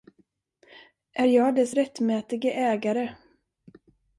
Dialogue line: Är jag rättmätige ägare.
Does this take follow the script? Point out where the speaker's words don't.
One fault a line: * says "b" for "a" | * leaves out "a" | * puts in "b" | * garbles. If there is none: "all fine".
* puts in "dess"